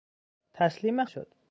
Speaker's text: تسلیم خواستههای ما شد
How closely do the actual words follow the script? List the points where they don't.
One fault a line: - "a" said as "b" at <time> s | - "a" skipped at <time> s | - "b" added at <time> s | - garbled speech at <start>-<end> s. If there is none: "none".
- "خواستههای ما" skipped at 1.1 s